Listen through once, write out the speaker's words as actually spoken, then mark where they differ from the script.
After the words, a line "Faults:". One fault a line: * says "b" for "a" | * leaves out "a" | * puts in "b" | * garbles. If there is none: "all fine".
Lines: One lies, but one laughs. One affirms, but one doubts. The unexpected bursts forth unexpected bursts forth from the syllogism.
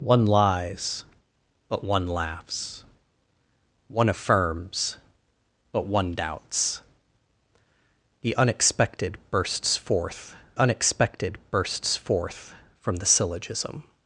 One lies, but one laughs. One affirms, but one doubts. The unexpected bursts forth unexpected bursts forth from the syllogism.
Faults:
all fine